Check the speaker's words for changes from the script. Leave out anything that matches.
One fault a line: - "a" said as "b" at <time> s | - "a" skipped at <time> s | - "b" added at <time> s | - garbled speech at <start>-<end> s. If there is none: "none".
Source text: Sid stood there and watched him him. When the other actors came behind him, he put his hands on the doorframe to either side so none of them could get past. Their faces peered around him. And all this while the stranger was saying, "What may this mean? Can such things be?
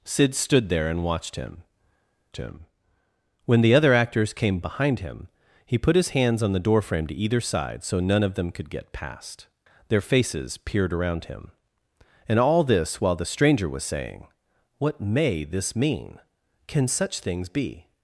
none